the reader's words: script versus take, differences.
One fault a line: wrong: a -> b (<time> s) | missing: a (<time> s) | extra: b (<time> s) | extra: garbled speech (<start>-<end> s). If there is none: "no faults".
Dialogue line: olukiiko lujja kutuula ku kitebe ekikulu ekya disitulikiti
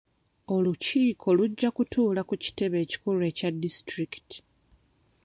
no faults